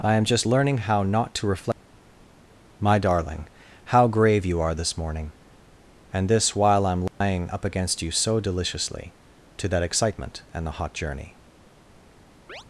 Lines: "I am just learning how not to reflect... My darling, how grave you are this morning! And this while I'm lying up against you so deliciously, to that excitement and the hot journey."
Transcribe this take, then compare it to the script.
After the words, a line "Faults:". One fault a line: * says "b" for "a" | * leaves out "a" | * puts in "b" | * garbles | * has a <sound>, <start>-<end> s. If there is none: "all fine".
"I am just learning how not to reflect... My darling, how grave you are this morning! And this while I'm lying up against you so deliciously, to that excitement and the hot journey."
Faults:
* has a dropout, 7.1-7.2 s
* has a chirp, 12.5-12.6 s